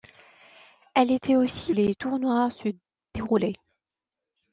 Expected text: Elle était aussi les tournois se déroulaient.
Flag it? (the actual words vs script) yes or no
no